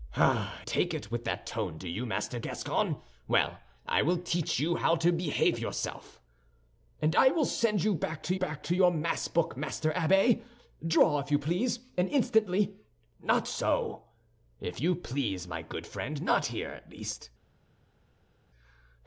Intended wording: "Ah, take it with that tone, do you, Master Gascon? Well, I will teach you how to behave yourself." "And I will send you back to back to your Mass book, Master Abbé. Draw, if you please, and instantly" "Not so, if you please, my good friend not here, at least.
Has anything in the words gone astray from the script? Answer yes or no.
no